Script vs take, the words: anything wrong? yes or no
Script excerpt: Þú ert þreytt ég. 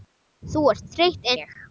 no